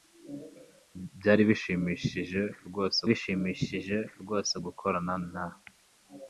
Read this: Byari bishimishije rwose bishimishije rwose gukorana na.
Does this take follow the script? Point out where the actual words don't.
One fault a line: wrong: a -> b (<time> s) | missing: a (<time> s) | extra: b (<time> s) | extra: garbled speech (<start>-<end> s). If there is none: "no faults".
no faults